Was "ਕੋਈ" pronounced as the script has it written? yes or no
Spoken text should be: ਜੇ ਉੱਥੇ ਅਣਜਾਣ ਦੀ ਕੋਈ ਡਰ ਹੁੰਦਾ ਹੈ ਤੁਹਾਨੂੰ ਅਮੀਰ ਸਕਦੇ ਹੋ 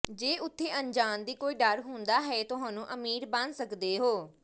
yes